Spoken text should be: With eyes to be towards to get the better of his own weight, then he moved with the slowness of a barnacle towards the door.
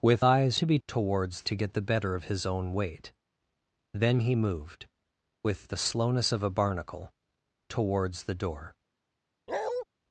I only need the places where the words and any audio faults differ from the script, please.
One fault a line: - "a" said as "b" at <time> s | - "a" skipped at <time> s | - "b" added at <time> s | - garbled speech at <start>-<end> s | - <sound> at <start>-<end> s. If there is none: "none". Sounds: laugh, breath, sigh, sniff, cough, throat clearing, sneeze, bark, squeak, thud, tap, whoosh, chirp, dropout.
- bark at 9.5-9.8 s